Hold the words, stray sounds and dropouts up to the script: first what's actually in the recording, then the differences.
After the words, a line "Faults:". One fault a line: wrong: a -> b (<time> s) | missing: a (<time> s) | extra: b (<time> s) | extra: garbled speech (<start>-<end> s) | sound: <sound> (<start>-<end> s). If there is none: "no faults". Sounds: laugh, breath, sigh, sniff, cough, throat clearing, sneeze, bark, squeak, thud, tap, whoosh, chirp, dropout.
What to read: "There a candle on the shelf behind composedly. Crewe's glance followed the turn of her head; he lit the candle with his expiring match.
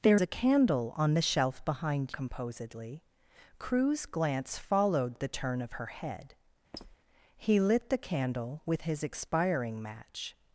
"There a candle on the shelf behind composedly. Crewe's glance followed the turn of her head; he lit the candle with his expiring match.
Faults:
sound: squeak (6.7-7.0 s)